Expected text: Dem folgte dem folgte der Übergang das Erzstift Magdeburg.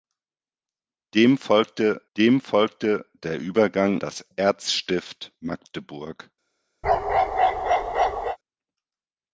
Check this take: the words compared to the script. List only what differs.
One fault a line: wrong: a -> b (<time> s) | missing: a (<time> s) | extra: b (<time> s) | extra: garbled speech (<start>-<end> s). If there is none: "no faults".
no faults